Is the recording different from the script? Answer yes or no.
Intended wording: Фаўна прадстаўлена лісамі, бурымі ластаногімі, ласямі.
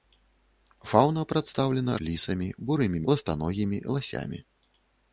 no